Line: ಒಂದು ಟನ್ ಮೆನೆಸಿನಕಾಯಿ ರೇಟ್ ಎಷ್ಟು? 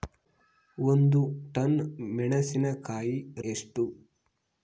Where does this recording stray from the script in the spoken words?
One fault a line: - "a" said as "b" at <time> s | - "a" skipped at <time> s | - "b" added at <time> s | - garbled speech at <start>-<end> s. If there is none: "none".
- "ರೇಟ್" skipped at 3.1 s